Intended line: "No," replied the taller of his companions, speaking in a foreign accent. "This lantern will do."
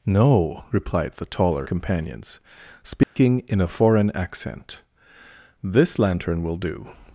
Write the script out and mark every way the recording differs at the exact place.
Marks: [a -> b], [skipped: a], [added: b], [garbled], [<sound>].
"No," replied the taller [skipped: of his] companions, speaking [dropout] in a foreign accent. "This lantern will do."